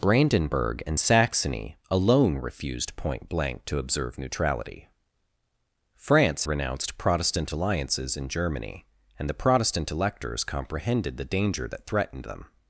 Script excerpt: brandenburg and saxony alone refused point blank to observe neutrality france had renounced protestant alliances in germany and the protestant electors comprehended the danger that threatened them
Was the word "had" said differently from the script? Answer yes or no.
yes